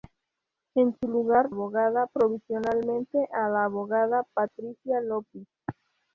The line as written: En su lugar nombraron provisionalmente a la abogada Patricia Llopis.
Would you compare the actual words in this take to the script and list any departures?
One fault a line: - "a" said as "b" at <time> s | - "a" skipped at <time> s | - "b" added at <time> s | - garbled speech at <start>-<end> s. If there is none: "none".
- "nombraron" said as "abogada" at 1.5 s